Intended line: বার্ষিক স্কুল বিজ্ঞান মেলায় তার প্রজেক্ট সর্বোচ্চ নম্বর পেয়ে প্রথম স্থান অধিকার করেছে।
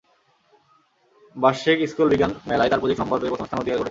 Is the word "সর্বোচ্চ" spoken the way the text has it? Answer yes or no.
no